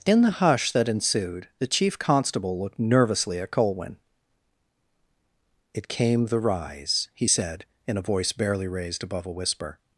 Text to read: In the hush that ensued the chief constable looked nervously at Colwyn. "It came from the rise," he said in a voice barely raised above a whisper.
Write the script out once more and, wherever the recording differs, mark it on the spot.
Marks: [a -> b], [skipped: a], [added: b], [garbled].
In the hush that ensued the chief constable looked nervously at Colwyn. "It came [skipped: from] the rise," he said in a voice barely raised above a whisper.